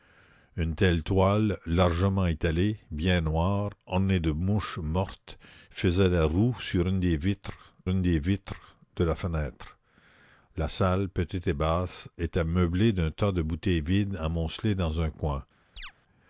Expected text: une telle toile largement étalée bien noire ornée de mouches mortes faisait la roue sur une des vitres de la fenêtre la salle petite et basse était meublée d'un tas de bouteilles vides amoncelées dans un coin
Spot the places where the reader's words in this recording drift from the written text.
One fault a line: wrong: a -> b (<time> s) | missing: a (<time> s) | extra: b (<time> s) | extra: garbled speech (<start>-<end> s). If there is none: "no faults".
extra: une des vitres (7.9 s)